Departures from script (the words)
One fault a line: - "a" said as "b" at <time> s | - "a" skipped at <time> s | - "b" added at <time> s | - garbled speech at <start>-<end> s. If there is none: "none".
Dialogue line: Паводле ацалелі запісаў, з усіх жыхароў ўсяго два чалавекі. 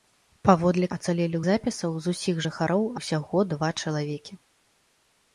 none